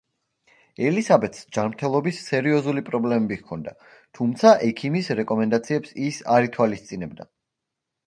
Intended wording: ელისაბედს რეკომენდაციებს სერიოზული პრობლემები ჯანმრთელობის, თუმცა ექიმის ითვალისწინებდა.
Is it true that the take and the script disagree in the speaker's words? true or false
true